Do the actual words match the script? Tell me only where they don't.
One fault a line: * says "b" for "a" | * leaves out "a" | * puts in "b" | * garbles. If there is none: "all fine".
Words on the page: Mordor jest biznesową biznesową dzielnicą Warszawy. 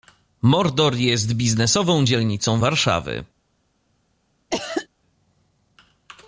* leaves out "biznesową"